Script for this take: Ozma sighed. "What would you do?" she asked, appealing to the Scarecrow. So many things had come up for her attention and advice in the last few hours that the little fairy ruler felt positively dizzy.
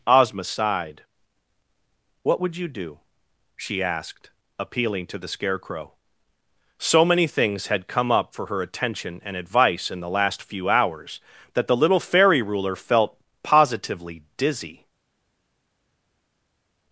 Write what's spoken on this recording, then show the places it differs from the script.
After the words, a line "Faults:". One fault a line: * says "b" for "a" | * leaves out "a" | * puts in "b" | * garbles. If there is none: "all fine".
Ozma sighed. "What would you do?" she asked, appealing to the Scarecrow. So many things had come up for her attention and advice in the last few hours that the little fairy ruler felt positively dizzy.
Faults:
all fine